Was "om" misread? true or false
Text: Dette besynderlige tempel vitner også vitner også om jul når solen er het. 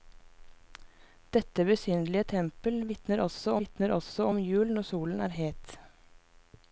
false